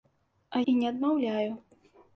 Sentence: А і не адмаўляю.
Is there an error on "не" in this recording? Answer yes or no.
no